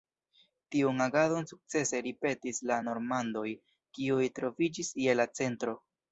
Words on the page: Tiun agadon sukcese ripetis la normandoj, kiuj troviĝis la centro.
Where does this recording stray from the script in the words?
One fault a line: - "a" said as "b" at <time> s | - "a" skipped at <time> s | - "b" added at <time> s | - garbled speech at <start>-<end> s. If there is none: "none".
- "je" added at 5.1 s